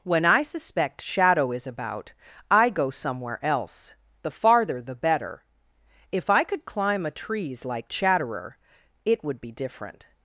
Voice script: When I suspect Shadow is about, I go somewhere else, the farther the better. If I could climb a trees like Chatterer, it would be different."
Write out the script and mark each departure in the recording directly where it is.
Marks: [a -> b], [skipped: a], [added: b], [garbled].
When I suspect Shadow is about, I go somewhere else, the farther the better. If I could climb a trees like Chatterer, it would be different."